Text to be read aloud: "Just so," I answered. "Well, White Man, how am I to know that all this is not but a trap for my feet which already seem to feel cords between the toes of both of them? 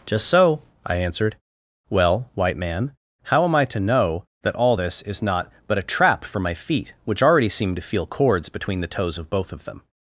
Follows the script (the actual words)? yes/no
yes